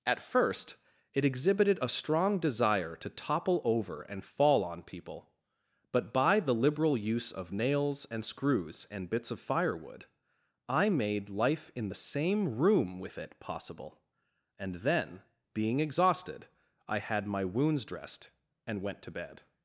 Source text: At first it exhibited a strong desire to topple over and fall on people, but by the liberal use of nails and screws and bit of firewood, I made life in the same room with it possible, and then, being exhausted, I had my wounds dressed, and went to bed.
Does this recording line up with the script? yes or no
no